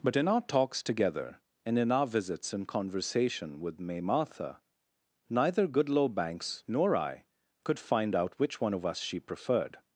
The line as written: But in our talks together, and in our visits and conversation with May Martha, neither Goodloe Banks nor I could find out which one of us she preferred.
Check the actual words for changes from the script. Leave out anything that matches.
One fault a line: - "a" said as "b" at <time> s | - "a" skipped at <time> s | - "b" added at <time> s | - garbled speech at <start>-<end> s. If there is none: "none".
none